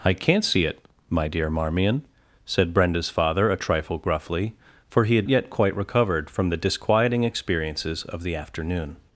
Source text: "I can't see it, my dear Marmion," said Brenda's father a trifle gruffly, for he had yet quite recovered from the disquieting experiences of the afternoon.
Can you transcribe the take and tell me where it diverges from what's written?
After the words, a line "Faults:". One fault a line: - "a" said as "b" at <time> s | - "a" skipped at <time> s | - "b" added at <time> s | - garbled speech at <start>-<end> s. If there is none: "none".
"I can't see it, my dear Marmion," said Brenda's father a trifle gruffly, for he had yet quite recovered from the disquieting experiences of the afternoon.
Faults:
none